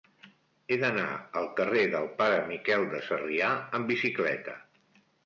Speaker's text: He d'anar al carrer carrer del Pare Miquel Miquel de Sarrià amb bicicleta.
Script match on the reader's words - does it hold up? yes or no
no